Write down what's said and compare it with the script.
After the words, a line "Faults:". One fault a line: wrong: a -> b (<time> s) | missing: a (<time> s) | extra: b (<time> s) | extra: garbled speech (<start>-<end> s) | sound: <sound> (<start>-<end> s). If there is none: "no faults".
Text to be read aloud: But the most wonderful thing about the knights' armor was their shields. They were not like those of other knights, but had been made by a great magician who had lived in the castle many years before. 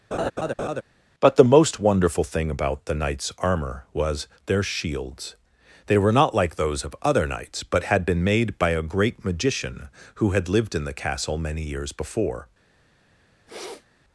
But the most wonderful thing about the knights' armor was their shields. They were not like those of other knights, but had been made by a great magician who had lived in the castle many years before.
Faults:
sound: laugh (0.1-0.8 s)
sound: sniff (13.5-13.9 s)